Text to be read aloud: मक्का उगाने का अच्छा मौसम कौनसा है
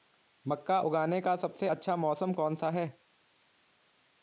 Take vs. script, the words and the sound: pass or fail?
fail